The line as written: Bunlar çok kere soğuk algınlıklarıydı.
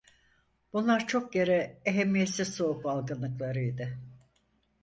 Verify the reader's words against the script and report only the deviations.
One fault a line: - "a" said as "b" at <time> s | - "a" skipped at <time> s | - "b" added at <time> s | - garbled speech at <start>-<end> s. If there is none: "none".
- "ehemmiyetsiz" added at 1.9 s